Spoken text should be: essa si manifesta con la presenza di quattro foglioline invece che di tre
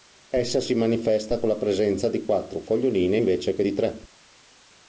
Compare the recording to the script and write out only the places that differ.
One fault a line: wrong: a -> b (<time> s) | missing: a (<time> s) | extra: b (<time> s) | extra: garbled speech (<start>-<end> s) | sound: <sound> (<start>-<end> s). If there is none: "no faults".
no faults